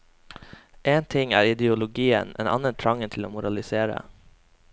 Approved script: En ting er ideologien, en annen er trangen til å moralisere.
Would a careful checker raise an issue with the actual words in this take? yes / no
no